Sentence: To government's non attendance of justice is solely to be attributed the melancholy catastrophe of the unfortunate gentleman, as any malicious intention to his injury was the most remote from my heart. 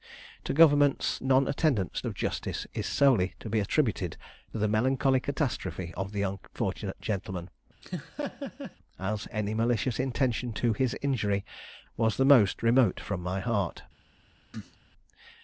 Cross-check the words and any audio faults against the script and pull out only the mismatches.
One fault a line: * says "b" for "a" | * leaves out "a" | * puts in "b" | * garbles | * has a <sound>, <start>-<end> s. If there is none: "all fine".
* has a laugh, 7.8-8.8 s
* has a cough, 14.5-14.8 s